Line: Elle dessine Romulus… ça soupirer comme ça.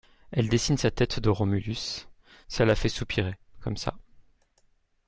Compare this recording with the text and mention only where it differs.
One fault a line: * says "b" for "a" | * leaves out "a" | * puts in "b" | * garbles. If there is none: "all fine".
* puts in "sa tête de"
* puts in "la fait"